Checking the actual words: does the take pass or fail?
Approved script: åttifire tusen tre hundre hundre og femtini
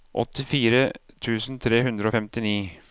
fail